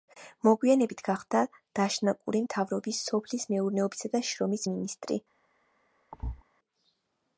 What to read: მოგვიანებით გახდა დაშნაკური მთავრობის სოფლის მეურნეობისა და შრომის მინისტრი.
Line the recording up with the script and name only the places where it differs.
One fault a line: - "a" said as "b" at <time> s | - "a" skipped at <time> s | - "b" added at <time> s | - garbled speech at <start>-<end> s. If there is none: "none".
none